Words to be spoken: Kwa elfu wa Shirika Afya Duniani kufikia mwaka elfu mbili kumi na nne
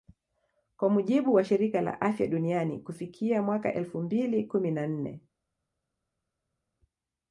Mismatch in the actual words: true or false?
true